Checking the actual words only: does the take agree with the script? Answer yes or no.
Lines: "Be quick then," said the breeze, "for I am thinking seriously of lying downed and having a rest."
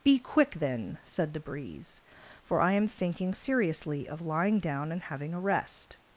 no